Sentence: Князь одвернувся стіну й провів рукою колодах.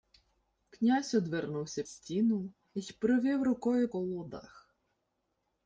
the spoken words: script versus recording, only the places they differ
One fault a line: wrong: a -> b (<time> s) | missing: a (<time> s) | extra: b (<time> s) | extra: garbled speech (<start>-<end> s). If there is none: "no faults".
no faults